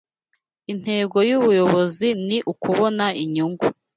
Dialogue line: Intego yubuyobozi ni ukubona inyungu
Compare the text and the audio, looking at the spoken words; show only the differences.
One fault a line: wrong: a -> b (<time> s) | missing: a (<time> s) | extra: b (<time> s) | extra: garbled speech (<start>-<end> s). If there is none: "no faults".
no faults